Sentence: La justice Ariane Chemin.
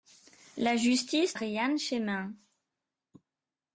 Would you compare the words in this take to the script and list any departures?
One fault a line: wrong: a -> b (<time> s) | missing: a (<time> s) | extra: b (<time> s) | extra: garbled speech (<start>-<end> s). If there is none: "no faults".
no faults